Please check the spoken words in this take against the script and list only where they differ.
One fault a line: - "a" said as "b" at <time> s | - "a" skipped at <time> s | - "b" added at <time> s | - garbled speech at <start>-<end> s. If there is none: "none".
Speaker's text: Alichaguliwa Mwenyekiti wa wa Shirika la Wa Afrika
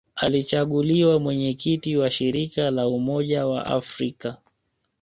- "wa" skipped at 2.1 s
- "Umoja" added at 2.9 s